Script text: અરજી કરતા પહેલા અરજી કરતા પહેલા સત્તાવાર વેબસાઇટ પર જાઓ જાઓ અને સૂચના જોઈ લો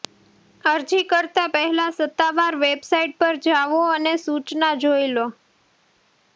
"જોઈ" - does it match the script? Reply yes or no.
yes